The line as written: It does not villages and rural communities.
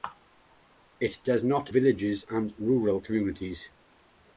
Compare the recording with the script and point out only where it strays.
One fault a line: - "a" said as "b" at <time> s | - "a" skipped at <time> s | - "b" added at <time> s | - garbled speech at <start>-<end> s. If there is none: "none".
none